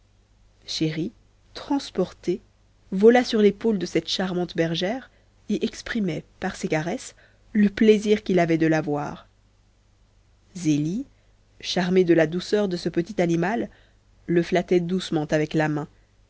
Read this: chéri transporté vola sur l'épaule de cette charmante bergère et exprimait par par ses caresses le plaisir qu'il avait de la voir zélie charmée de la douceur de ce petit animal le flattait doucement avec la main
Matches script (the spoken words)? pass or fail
fail